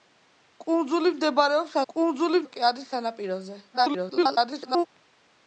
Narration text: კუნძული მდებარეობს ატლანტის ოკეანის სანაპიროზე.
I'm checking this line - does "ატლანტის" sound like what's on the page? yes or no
no